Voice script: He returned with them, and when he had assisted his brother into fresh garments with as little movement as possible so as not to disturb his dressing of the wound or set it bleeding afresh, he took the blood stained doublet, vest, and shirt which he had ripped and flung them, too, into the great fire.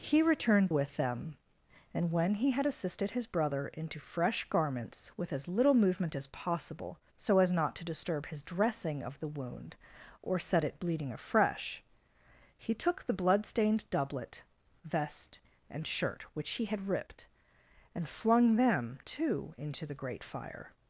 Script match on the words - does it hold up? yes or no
yes